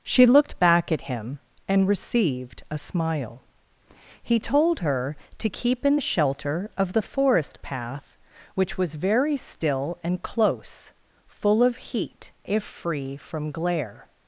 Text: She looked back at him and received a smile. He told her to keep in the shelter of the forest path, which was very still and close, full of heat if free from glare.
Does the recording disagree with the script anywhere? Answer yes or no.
no